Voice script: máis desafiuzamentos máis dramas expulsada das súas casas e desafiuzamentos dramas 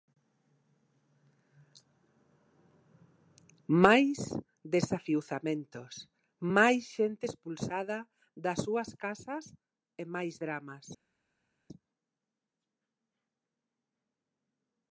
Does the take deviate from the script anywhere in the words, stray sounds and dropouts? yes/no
yes